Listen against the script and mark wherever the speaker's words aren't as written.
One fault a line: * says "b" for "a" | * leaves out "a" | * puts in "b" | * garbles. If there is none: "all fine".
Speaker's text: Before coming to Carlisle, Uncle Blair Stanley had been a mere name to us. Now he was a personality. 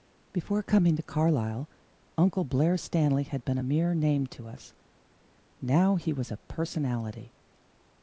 all fine